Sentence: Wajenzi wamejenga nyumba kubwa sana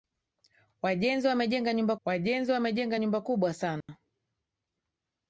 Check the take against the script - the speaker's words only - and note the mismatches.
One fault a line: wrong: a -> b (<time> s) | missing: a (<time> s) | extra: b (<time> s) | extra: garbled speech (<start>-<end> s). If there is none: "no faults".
extra: wajenzi wamejenga nyumba (2.0 s)